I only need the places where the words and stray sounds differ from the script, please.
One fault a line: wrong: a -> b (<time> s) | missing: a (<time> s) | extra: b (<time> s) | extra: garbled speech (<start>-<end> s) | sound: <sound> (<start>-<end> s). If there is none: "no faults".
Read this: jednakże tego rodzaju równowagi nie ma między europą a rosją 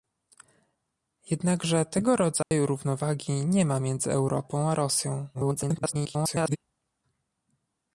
sound: dropout (2.4-2.5 s)
extra: garbled speech (5.3-6.6 s)